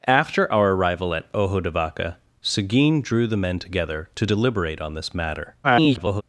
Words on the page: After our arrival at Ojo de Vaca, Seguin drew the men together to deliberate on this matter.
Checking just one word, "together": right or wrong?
right